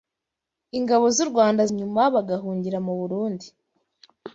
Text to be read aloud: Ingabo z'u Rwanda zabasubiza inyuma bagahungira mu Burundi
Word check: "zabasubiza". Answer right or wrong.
wrong